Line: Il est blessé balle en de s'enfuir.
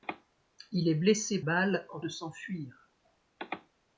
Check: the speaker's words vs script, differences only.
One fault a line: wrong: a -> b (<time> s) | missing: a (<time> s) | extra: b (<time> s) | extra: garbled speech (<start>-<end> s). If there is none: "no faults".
no faults